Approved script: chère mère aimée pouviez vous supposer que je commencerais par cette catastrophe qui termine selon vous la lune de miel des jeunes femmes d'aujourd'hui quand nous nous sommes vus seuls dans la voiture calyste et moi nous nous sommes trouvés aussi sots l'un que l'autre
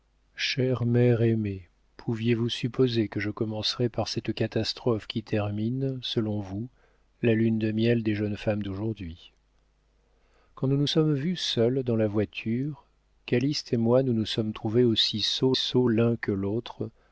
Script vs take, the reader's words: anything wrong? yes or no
yes